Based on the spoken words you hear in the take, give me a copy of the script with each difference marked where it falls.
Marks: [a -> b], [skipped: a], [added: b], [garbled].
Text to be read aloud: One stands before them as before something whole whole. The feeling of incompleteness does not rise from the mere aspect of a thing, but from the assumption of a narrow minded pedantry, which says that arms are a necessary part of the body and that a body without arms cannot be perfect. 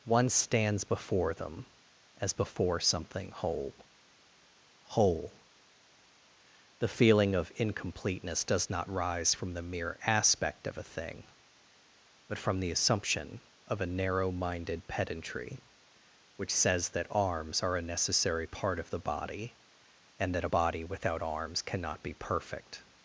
One stands before them as before something whole whole. The feeling of incompleteness does not rise from the mere aspect of a thing, but from the assumption of a narrow minded pedantry, which says that arms are a necessary part of the body and that a body without arms cannot be perfect.